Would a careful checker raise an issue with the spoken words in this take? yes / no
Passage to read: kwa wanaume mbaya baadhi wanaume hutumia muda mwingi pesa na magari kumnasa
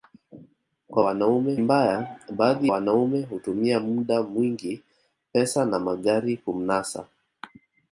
no